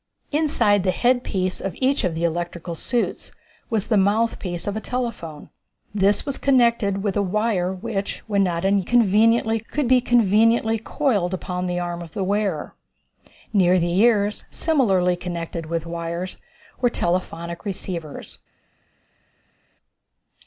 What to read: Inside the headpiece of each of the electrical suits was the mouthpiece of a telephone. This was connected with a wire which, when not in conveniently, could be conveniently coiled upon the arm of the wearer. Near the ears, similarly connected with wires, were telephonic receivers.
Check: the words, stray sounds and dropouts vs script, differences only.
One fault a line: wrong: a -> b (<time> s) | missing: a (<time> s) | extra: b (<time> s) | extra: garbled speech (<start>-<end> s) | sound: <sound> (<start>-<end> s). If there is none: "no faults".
no faults